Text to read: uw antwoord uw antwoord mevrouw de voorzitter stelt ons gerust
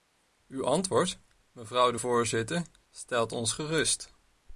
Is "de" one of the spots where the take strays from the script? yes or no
no